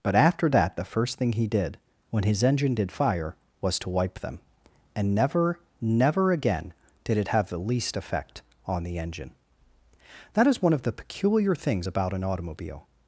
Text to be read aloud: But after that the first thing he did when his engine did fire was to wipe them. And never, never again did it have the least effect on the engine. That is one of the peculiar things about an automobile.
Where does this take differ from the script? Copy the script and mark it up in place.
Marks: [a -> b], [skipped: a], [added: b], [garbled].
But after that the first thing he did when his engine did fire was to wipe them. And never, never again did it have the least effect on the engine. That is one of the peculiar things about an automobile.